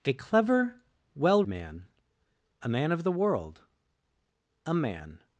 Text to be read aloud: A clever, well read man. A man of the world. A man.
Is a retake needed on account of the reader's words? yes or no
yes